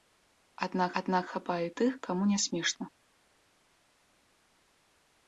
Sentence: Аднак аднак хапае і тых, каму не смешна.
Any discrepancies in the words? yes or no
no